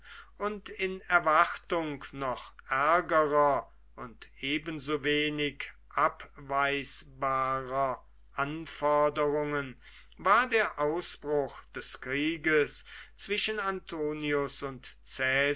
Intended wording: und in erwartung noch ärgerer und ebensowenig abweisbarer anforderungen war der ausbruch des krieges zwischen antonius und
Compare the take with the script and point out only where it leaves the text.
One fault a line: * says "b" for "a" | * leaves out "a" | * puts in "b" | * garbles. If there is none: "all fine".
all fine